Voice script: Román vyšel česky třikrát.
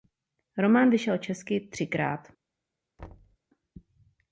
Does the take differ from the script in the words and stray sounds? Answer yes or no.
yes